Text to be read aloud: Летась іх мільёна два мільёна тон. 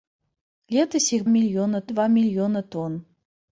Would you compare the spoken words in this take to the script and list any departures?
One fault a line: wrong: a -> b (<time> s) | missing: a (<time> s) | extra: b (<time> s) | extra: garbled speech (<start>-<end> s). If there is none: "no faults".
no faults